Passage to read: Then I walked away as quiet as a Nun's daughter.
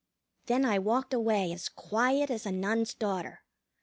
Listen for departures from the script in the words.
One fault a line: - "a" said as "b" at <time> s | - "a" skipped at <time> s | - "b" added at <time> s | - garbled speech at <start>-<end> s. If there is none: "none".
none